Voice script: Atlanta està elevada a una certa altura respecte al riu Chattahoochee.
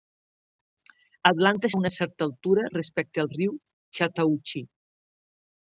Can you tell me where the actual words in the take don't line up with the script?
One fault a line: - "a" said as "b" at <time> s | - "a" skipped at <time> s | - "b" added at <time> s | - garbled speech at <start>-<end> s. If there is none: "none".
- "està elevada" skipped at 1.7 s